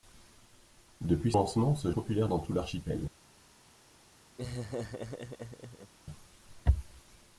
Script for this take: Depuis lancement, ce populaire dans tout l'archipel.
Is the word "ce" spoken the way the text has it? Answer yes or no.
yes